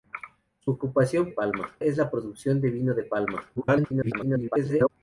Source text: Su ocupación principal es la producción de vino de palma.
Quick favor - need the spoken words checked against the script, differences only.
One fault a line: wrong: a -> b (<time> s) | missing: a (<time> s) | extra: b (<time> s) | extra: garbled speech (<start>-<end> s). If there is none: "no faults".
wrong: principal -> palma (1.3 s)
extra: garbled speech (3.6-4.9 s)